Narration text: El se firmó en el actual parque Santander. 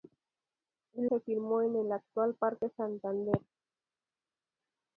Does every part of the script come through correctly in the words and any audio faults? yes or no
yes